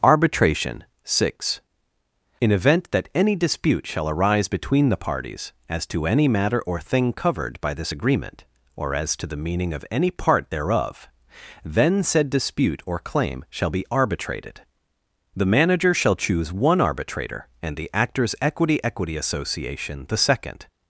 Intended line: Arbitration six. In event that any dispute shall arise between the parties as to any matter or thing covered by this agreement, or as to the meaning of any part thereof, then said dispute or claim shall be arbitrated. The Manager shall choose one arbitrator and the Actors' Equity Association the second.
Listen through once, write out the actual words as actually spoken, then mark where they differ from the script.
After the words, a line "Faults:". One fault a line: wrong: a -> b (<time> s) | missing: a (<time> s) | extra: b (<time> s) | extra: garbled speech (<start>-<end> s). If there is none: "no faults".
Arbitration six. In event that any dispute shall arise between the parties as to any matter or thing covered by this agreement, or as to the meaning of any part thereof, then said dispute or claim shall be arbitrated. The Manager shall choose one arbitrator and the Actors' Equity Equity Association the second.
Faults:
extra: Equity (18.8 s)